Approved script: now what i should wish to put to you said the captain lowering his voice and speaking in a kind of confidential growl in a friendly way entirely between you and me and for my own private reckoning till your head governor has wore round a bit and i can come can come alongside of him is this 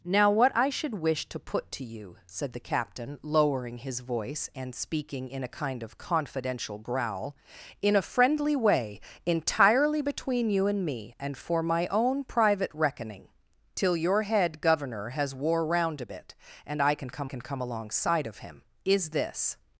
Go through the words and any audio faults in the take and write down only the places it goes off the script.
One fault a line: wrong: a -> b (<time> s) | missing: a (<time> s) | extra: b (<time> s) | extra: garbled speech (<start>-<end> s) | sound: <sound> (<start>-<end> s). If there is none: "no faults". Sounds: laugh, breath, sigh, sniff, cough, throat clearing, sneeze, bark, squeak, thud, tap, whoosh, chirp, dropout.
no faults